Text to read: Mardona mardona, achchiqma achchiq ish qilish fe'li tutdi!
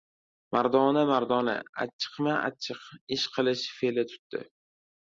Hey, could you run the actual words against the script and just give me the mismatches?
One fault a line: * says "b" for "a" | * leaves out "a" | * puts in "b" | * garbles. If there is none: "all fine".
all fine